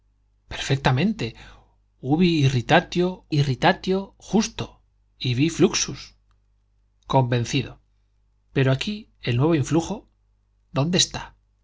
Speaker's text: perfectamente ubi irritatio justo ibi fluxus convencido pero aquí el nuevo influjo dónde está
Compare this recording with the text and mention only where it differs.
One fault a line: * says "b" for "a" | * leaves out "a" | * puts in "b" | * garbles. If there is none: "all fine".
* puts in "irritatio"